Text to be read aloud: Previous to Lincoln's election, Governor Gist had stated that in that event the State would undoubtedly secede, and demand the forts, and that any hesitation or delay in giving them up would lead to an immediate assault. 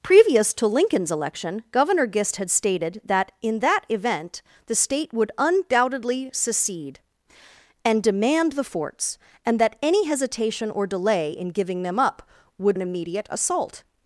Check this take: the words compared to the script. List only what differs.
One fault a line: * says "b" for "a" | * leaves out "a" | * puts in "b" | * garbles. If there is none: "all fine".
* leaves out "lead to"